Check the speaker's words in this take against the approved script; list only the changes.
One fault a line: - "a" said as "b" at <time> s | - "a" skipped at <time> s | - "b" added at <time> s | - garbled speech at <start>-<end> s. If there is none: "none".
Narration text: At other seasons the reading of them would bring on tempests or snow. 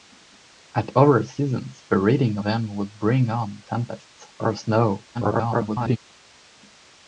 - "of" skipped at 2.4 s
- garbled speech at 5.1-6.0 s